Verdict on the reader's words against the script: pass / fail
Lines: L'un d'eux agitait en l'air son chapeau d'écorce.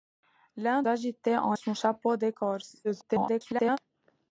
fail